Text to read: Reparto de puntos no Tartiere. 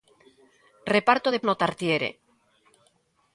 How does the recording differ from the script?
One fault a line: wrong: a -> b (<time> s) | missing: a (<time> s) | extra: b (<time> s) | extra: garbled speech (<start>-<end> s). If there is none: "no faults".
missing: puntos (1.4 s)